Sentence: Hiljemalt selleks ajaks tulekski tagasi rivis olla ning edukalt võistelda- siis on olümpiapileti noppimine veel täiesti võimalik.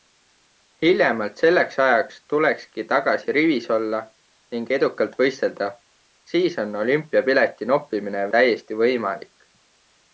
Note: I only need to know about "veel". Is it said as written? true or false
false